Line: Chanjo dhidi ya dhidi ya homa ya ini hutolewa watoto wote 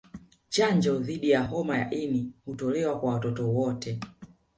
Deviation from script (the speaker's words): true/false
true